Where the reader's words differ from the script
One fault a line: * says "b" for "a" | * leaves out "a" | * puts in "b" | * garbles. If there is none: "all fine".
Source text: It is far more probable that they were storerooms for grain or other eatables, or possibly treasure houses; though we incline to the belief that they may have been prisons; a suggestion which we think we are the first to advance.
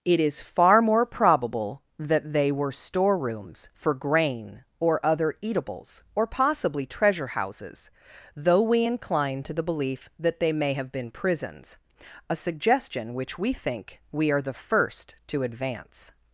all fine